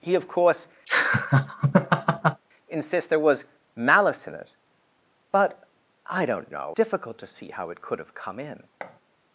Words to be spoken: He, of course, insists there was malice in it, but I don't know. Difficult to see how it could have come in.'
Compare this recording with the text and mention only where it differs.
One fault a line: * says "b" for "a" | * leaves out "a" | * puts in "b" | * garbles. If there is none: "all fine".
all fine